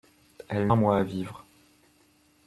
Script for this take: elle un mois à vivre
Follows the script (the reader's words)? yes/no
yes